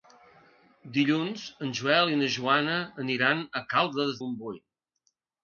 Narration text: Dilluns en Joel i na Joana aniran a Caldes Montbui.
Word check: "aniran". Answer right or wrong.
right